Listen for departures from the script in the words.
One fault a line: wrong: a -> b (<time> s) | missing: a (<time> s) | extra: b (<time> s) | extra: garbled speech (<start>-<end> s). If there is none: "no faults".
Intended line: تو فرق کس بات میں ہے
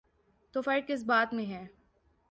no faults